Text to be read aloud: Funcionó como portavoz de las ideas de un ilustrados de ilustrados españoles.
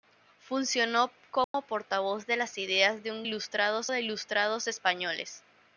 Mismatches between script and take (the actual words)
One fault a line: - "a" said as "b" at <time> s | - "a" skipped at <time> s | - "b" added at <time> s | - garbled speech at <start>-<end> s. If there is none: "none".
none